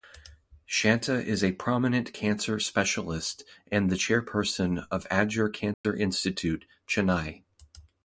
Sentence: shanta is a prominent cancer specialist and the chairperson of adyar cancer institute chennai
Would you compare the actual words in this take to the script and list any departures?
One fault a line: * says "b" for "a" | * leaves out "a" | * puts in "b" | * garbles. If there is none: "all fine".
all fine